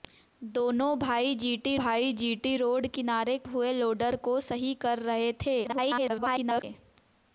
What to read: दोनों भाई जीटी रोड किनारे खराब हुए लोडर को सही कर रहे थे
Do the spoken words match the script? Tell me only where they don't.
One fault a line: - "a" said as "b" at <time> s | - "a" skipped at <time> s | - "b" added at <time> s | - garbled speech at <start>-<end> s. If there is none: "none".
- "भाई जीटी" added at 1.8 s
- "खराब" skipped at 3.4 s
- garbled speech at 5.6-6.6 s